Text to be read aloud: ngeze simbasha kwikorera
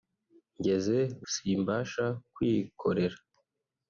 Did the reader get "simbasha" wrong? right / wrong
right